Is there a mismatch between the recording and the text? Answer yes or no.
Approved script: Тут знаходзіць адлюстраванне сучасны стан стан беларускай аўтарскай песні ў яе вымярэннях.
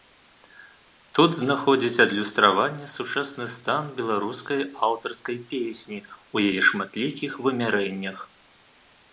yes